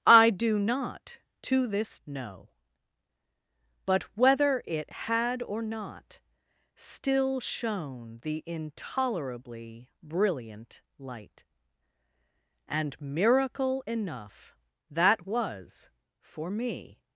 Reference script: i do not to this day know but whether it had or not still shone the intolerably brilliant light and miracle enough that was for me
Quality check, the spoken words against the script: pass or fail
fail